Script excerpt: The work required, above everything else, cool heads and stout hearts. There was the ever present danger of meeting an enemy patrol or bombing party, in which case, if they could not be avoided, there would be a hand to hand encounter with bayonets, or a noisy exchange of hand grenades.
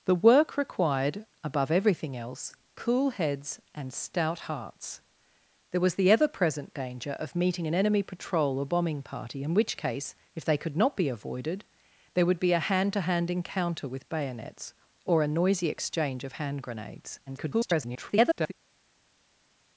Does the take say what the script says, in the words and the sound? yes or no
no